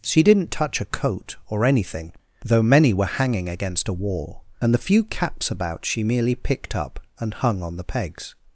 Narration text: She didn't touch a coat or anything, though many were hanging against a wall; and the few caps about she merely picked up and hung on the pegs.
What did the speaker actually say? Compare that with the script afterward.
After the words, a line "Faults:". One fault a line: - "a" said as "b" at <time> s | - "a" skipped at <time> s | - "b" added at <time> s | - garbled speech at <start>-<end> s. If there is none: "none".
She didn't touch a coat or anything, though many were hanging against a wall; and the few caps about she merely picked up and hung on the pegs.
Faults:
none